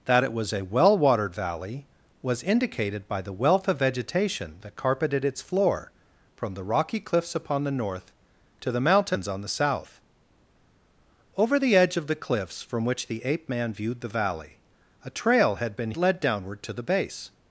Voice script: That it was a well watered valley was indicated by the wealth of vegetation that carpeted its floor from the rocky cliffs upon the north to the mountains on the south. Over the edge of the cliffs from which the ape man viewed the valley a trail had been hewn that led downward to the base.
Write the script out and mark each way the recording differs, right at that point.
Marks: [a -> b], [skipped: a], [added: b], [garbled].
That it was a well watered valley was indicated by the wealth of vegetation that carpeted its floor from the rocky cliffs upon the north to the mountains on the south. Over the edge of the cliffs from which the ape man viewed the valley a trail had been [skipped: hewn that] led downward to the base.